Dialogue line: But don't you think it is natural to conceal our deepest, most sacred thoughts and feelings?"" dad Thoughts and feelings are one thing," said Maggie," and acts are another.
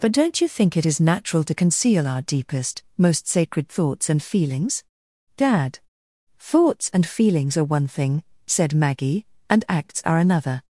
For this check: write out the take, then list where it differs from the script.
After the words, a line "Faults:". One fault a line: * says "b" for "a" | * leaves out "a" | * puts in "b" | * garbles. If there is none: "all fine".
But don't you think it is natural to conceal our deepest, most sacred thoughts and feelings?"" dad Thoughts and feelings are one thing," said Maggie," and acts are another.
Faults:
all fine